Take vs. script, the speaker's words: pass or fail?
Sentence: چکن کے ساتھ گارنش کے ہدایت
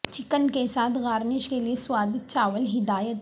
fail